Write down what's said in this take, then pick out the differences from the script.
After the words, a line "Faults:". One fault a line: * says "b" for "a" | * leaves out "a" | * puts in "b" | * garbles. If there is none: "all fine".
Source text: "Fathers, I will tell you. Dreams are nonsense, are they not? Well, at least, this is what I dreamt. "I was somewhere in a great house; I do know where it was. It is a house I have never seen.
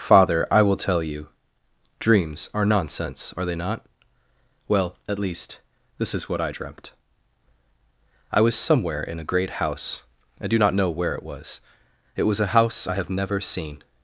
"Father, I will tell you. Dreams are nonsense, are they not? Well, at least, this is what I dreamt. "I was somewhere in a great house; I do not know where it was. It was a house I have never seen.
Faults:
* says "Father" for "Fathers"
* puts in "not"
* says "was" for "is"